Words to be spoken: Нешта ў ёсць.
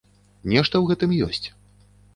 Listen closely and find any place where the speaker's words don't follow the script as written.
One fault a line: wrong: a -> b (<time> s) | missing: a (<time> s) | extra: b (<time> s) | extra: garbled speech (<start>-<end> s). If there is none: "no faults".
extra: гэтым (0.9 s)